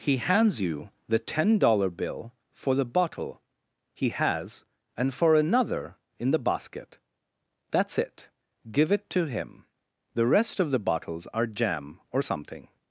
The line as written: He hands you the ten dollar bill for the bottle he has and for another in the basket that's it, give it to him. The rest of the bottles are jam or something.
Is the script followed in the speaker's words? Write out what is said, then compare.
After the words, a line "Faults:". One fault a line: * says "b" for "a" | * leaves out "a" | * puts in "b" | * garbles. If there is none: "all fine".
He hands you the ten dollar bill for the bottle he has and for another in the basket that's it, give it to him. The rest of the bottles are jam or something.
Faults:
all fine